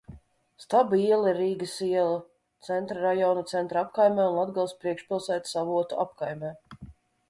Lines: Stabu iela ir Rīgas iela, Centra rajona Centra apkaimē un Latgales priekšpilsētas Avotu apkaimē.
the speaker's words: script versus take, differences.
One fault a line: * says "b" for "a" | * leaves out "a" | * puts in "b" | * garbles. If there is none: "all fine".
all fine